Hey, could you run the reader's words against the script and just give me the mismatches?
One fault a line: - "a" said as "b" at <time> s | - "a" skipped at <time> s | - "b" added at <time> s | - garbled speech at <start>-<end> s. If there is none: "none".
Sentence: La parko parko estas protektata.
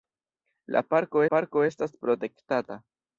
none